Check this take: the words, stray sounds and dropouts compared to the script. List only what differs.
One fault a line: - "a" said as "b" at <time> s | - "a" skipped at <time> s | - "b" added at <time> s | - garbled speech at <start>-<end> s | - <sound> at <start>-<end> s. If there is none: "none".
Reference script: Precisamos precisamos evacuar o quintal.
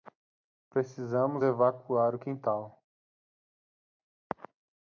- "precisamos" skipped at 1.4 s